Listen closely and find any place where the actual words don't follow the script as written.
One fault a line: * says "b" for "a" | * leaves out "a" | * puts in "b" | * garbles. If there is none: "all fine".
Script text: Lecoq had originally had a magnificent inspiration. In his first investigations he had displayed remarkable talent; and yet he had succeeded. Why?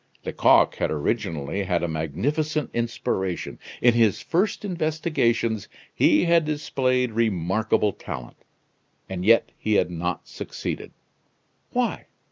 * puts in "not"